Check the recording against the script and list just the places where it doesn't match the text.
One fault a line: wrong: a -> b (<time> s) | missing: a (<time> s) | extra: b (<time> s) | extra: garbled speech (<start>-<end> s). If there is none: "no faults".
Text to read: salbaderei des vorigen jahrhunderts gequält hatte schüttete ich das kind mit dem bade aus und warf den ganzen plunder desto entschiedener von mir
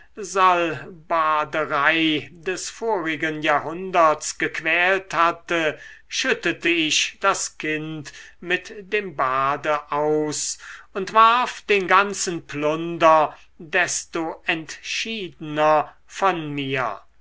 no faults